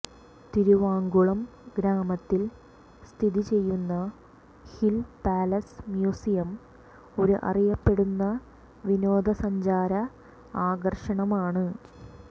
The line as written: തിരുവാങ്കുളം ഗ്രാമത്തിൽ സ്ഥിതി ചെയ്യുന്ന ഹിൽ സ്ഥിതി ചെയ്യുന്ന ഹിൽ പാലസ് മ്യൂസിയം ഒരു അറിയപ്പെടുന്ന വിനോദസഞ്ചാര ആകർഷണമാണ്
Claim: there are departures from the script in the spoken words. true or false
true